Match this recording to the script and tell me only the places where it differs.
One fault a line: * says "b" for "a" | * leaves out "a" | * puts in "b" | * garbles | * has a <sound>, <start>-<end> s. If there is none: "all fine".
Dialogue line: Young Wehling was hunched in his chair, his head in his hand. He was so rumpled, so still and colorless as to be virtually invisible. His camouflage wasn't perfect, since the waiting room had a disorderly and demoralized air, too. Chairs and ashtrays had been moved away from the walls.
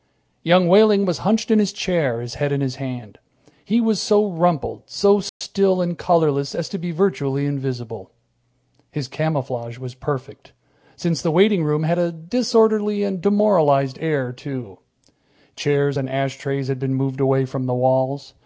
* has a dropout, 5.3-5.4 s
* says "was" for "wasn't"